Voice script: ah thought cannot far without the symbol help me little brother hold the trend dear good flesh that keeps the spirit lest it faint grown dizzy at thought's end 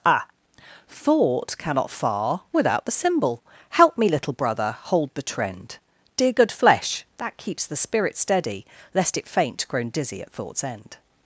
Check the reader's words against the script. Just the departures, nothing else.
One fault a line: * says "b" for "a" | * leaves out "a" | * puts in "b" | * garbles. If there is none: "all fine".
* puts in "steady"